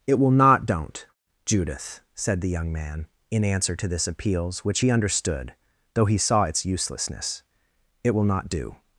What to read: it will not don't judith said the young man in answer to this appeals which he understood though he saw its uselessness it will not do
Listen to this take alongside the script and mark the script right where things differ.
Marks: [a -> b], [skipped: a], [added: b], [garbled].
it will not don't judith said the young man in answer to this appeals which he understood though he saw its uselessness it will not do